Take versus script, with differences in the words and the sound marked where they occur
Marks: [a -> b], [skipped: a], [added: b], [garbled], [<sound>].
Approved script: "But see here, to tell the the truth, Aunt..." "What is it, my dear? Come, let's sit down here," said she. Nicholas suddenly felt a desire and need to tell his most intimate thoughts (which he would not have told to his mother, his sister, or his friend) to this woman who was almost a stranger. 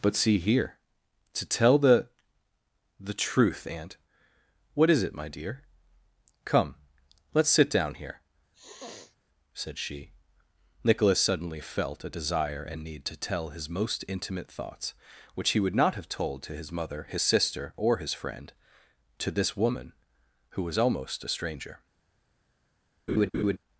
"But see here, to tell the the truth, Aunt..." "What is it, my dear? Come, let's sit down here," [sniff] said she. Nicholas suddenly felt a desire and need to tell his most intimate thoughts (which he would not have told to his mother, his sister, or his friend) to this woman who was almost a stranger. [laugh]